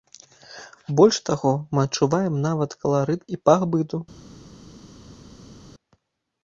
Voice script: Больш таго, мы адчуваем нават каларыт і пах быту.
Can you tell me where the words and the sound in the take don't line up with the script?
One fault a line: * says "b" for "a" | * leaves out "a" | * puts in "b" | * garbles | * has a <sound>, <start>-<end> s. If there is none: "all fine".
all fine